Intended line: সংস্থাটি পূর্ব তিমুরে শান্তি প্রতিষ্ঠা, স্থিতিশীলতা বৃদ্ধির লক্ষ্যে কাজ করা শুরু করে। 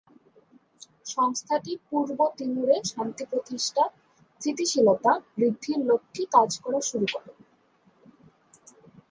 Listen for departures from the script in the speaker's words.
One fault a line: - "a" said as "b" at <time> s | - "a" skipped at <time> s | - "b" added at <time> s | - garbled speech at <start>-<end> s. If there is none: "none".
none